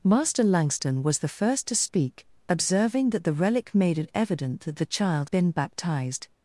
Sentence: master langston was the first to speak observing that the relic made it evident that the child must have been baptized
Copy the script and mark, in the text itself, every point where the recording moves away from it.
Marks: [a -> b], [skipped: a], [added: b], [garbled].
master langston was the first to speak observing that the relic made it evident that the child [skipped: must have] been baptized